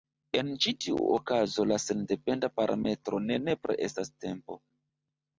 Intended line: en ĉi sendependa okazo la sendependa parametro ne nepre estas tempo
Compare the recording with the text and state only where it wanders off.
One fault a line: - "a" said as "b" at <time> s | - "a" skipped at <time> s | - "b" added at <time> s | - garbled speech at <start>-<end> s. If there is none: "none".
- "sendependa" said as "tiu" at 0.8 s